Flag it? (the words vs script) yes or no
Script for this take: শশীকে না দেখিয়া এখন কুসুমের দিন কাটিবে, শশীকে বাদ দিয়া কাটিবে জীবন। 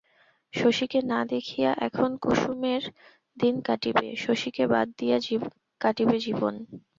no